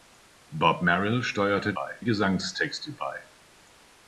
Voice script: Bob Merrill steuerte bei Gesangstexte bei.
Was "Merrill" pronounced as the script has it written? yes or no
yes